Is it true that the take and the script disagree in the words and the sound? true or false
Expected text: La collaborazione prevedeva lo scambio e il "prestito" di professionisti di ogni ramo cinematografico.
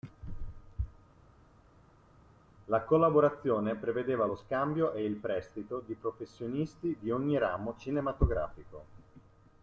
false